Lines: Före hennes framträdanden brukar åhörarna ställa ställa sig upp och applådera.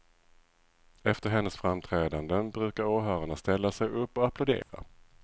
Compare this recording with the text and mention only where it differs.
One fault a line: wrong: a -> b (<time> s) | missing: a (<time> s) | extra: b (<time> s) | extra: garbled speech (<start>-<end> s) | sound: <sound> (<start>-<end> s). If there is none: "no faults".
wrong: Före -> Efter (1.0 s)
missing: ställa (3.7 s)
sound: dropout (4.6-4.7 s)